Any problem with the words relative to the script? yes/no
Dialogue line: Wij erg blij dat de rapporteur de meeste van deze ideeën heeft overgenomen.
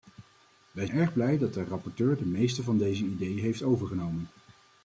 no